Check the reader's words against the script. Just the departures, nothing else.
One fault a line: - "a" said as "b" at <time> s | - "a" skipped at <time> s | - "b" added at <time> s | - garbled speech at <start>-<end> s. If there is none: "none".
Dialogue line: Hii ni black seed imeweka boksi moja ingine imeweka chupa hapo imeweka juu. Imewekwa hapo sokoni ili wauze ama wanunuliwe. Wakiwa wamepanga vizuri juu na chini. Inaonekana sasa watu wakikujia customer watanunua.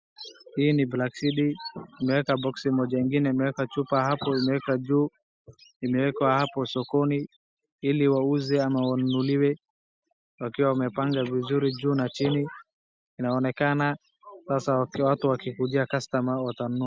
none